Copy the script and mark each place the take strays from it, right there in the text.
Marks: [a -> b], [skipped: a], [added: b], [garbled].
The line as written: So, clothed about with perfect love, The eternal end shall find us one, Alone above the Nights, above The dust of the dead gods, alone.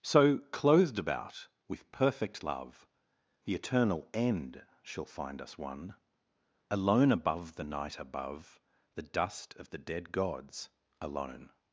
So, clothed about with perfect love, The eternal end shall find us one, Alone above the [Nights, -> Night] above The dust of the dead gods, alone.